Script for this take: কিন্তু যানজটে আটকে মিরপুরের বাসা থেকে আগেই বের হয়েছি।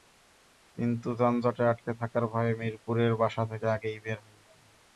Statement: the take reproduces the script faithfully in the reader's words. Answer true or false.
false